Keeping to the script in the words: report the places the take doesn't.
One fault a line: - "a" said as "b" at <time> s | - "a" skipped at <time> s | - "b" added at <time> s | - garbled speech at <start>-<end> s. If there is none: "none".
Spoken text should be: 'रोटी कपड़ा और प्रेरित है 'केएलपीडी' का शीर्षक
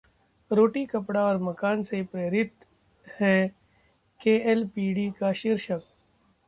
- "मकान से" added at 1.4 s